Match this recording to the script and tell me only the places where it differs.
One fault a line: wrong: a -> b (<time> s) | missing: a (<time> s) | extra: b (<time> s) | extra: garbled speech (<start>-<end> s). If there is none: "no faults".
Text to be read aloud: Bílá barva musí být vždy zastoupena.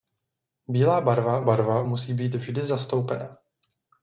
extra: barva (1.4 s)